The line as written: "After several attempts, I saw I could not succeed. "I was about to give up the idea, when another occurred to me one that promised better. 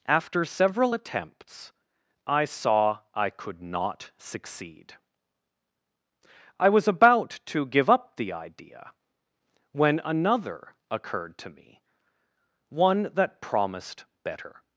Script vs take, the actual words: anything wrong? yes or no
no